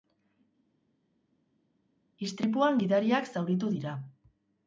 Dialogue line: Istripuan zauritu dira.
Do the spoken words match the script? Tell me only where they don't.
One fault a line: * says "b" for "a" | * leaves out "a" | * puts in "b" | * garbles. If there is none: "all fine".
* puts in "gidariak"